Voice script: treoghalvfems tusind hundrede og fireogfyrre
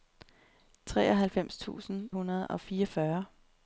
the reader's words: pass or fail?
pass